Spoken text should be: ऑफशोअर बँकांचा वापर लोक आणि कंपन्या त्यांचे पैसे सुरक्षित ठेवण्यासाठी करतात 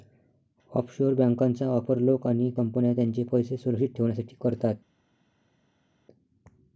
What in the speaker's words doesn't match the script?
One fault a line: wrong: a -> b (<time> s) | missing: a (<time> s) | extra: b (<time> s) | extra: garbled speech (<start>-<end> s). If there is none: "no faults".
no faults